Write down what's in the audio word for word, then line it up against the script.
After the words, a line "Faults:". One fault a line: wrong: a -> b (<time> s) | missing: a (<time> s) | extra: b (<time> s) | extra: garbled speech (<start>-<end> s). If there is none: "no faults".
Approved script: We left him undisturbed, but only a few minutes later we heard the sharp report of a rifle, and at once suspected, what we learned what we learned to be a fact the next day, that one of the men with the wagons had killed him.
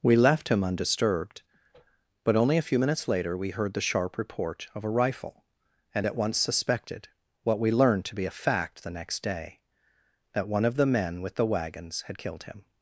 We left him undisturbed, but only a few minutes later we heard the sharp report of a rifle, and at once suspected, what we learned to be a fact the next day, that one of the men with the wagons had killed him.
Faults:
missing: what we learned (8.0 s)